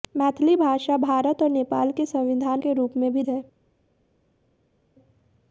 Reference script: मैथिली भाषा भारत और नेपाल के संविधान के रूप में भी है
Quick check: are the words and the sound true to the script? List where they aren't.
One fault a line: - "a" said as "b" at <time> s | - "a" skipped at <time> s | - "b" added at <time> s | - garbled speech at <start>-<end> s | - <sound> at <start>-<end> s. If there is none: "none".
none